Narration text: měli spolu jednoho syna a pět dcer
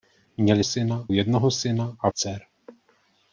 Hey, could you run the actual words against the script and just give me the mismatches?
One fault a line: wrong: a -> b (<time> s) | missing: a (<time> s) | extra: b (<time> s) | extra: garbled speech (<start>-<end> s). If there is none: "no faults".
wrong: spolu -> syna (0.6 s)
missing: pět (2.1 s)